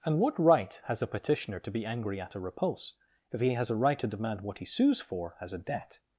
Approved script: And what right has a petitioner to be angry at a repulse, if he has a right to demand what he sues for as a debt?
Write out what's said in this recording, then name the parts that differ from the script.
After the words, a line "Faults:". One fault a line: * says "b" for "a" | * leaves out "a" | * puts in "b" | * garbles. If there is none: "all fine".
And what right has a petitioner to be angry at a repulse, if he has a right to demand what he sues for as a debt?
Faults:
all fine